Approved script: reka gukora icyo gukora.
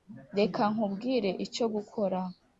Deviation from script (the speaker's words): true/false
true